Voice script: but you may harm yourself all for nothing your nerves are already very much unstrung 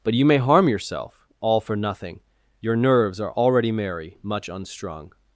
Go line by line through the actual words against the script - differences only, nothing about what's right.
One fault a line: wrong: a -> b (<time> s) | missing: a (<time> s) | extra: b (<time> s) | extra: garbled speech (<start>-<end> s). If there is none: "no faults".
wrong: very -> merry (3.7 s)